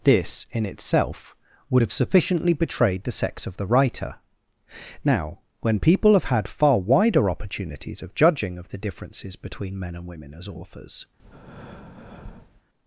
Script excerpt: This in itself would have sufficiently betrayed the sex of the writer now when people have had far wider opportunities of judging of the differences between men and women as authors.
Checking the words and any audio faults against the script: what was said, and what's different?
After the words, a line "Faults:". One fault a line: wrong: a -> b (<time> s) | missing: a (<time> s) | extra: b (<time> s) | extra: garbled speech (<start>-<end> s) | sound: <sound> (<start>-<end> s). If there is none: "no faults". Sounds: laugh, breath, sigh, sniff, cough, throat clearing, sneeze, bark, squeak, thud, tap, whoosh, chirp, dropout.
This in itself would have sufficiently betrayed the sex of the writer now when people have had far wider opportunities of judging of the differences between men and women as authors.
Faults:
sound: breath (11.2-12.6 s)